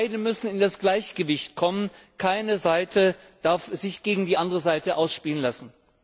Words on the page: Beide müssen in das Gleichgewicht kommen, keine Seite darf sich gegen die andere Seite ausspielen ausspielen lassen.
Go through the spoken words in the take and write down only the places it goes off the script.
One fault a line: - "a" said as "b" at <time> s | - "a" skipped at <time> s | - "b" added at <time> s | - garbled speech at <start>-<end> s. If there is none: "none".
- "ausspielen" skipped at 5.4 s